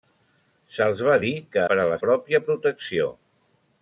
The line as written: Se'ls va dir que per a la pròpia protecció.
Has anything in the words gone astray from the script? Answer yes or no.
no